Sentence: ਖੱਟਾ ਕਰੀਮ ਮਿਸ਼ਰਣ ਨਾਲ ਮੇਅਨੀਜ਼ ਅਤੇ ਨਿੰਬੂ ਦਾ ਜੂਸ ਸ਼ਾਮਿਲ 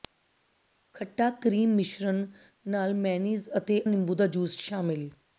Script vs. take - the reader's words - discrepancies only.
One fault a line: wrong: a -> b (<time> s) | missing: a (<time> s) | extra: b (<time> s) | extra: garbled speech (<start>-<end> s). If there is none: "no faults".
no faults